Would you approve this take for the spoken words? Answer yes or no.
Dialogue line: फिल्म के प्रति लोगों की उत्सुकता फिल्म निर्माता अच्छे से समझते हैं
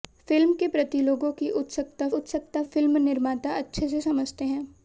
no